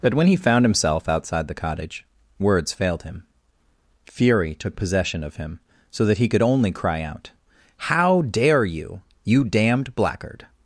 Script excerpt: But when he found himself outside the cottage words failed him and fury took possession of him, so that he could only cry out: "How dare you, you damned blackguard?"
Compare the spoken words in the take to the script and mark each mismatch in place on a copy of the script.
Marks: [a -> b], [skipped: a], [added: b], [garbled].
But when he found himself outside the cottage words failed him [skipped: and] fury took possession of him, so that he could only cry out: "How dare you, you damned blackguard?"